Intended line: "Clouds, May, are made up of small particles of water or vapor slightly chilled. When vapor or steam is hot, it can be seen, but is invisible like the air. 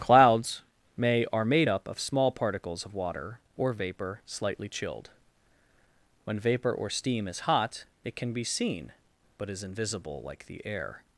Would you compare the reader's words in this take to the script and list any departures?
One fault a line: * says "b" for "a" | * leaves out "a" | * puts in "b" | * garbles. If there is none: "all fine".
all fine